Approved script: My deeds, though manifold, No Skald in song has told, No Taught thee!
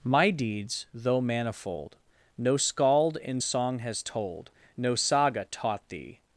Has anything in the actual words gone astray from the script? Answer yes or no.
yes